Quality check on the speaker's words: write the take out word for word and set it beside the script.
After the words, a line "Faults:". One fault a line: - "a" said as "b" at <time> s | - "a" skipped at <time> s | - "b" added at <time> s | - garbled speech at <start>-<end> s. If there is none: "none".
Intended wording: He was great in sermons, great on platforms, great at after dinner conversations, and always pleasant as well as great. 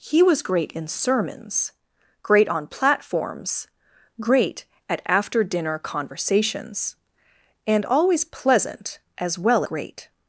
He was great in sermons, great on platforms, great at after dinner conversations, and always pleasant as well great.
Faults:
- "as" skipped at 9.6 s